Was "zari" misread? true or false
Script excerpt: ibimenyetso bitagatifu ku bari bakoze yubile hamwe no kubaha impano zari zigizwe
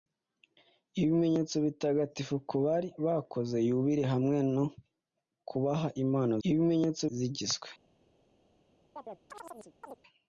true